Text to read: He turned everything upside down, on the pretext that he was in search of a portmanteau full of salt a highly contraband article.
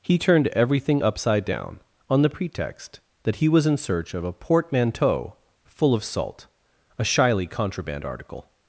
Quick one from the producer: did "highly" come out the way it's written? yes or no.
no